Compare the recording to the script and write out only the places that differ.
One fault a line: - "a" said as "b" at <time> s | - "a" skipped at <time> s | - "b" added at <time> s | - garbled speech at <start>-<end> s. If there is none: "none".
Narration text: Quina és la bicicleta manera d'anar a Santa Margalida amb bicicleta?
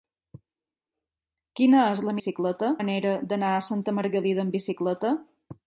none